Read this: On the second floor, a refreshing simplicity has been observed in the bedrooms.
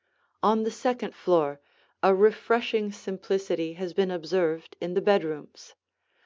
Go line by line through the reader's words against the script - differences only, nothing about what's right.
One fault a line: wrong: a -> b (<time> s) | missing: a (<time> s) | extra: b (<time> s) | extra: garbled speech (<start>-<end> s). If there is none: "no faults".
no faults